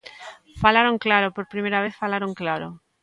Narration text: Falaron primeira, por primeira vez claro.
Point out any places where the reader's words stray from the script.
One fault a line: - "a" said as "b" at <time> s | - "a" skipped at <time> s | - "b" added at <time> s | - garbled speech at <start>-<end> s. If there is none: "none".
- "primeira" said as "claro" at 1.1 s
- "falaron" added at 2.0 s